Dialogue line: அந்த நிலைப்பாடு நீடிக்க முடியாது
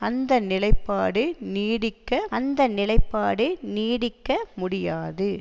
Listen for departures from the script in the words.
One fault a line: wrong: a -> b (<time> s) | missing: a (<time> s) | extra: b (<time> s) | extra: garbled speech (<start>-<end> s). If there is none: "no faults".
extra: அந்த நிலைப்பாடு நீடிக்க (2.3 s)